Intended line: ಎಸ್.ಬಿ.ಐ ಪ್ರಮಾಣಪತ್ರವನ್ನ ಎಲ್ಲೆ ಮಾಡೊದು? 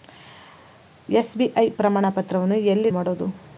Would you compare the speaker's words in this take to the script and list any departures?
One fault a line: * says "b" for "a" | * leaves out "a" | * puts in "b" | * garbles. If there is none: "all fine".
all fine